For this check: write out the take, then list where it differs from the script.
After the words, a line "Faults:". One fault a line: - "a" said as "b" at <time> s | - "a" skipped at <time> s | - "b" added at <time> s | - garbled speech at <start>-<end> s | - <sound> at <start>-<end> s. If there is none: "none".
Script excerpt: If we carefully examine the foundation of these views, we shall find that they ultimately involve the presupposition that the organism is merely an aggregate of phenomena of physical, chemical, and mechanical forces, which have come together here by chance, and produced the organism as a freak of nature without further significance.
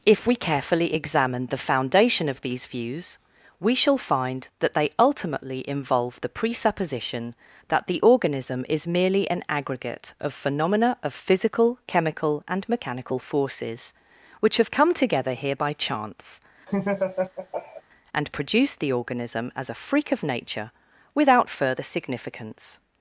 If we carefully examine the foundation of these views, we shall find that they ultimately involve the presupposition that the organism is merely an aggregate of phenomena of physical, chemical, and mechanical forces, which have come together here by chance, and produced the organism as a freak of nature without further significance.
Faults:
- laugh at 16.7-17.8 s